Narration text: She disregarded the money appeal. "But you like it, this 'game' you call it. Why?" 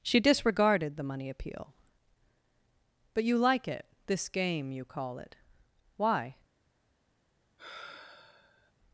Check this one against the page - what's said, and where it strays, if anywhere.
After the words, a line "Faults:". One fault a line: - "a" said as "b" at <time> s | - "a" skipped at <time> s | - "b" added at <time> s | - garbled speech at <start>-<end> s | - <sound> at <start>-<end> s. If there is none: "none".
She disregarded the money appeal. "But you like it, this 'game' you call it. Why?"
Faults:
- sigh at 7.6-8.7 s